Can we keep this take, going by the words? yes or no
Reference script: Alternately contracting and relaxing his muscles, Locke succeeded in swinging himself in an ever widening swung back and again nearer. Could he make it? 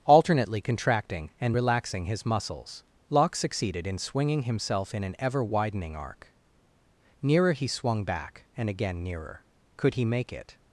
no